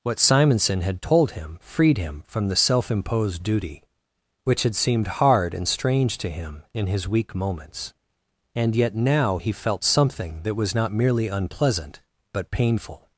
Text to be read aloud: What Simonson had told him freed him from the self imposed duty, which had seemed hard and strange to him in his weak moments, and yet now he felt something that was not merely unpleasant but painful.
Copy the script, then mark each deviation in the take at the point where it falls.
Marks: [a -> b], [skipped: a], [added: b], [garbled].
What Simonson had told him freed him from the self imposed duty, which had seemed hard and strange to him in his weak moments, and yet now he felt something that was not merely unpleasant but painful.